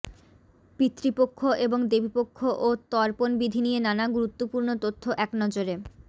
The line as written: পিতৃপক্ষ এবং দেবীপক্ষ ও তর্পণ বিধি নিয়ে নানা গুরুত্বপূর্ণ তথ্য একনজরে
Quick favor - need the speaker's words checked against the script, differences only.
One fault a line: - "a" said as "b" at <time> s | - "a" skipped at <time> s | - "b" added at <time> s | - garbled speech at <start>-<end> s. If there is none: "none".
none